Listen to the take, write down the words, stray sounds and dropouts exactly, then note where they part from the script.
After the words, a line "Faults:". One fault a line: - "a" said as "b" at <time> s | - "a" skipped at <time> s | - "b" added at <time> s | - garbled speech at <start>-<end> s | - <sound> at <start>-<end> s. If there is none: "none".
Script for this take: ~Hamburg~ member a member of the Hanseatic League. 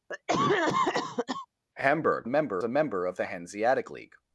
~Hamburg~ member a member of the Hanseatic League.
Faults:
- cough at 0.1-1.5 s